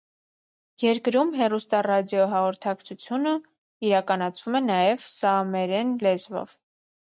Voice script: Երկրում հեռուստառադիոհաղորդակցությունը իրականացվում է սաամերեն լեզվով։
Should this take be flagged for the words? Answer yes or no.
yes